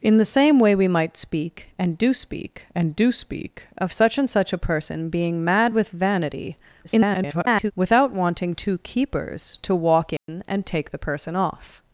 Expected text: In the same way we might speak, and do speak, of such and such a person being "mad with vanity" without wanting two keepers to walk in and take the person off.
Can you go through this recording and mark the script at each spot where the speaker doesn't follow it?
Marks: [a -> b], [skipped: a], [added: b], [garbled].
In the same way we might speak, and do speak, [added: and do speak] of such and such a person being "mad with vanity" [garbled] without wanting two keepers to walk in and take the person off.